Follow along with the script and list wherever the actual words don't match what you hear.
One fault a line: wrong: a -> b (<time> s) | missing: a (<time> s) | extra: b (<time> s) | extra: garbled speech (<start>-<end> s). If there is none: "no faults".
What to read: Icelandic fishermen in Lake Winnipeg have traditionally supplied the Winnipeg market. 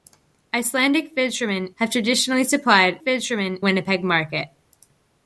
missing: in Lake Winnipeg (1.7 s)
wrong: the -> fishermen (3.0 s)